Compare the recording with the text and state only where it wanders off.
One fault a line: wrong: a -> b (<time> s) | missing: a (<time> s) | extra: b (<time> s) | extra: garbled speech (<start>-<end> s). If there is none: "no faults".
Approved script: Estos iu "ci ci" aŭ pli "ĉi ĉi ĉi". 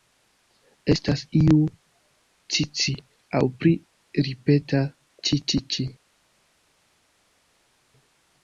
wrong: Estos -> Estas (0.9 s)
extra: ripeta (4.3 s)